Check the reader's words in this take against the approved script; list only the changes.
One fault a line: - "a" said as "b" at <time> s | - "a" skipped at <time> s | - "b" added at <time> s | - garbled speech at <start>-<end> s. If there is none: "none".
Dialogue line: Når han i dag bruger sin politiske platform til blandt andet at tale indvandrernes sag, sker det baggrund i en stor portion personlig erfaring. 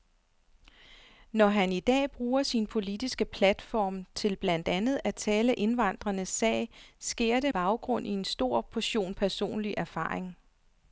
none